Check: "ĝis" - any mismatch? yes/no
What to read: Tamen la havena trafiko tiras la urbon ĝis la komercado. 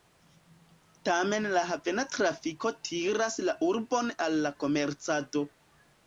yes